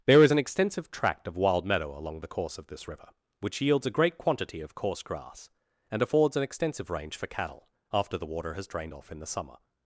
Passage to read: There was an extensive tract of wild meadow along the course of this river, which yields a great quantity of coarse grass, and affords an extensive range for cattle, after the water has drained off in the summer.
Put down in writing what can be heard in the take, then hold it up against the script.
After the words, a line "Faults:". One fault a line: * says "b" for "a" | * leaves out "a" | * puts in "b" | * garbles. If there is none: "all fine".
There is an extensive tract of wild meadow along the course of this river, which yields a great quantity of coarse grass, and affords an extensive range for cattle, after the water has drained off in the summer.
Faults:
* says "is" for "was"